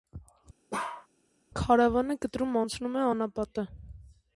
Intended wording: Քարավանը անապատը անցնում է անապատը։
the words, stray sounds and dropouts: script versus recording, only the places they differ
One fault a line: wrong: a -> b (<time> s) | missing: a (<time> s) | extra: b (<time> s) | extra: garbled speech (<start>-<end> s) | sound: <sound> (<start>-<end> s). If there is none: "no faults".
sound: bark (0.7-1.1 s)
wrong: անապատը -> կտրում (2.2 s)